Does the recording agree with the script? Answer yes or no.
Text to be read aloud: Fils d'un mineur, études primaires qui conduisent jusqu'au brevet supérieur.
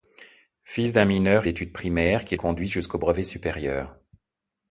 yes